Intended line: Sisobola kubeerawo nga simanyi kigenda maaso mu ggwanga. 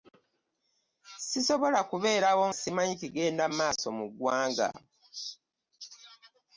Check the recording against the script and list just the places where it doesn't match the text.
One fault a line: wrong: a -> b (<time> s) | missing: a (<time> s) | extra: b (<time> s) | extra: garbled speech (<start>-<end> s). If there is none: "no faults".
missing: nga (2.5 s)